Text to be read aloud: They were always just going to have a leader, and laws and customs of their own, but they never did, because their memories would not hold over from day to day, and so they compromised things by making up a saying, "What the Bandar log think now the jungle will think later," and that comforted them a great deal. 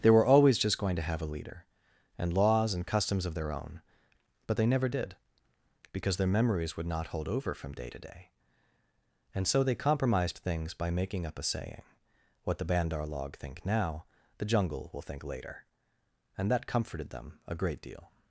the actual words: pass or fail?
pass